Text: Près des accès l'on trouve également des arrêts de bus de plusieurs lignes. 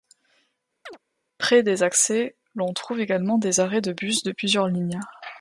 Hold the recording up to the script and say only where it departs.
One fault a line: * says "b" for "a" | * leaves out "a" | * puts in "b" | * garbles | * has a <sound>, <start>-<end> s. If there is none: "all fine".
* has a chirp, 0.9-1.0 s